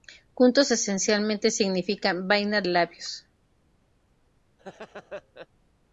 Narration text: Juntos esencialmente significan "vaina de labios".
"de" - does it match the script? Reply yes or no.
no